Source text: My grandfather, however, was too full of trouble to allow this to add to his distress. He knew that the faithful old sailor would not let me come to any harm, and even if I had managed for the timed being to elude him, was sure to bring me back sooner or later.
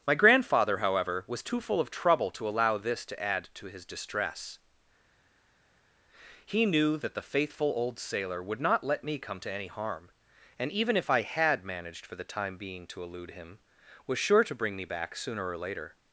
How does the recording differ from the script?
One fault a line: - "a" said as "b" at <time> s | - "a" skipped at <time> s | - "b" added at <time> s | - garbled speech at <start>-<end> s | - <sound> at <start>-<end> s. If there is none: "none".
- "timed" said as "time" at 12.2 s